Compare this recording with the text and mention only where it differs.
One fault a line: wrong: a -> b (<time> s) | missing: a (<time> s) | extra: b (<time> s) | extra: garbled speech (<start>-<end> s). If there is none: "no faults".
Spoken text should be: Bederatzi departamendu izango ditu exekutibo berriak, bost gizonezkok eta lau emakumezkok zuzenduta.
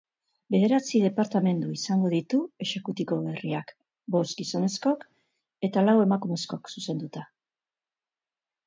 no faults